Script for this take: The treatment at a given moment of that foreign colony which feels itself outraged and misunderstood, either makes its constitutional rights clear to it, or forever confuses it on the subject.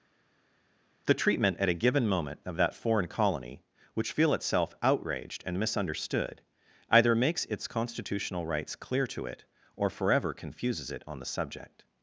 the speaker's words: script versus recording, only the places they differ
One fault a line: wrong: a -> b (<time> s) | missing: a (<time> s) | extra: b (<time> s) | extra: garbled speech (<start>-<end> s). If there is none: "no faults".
wrong: feels -> feel (4.1 s)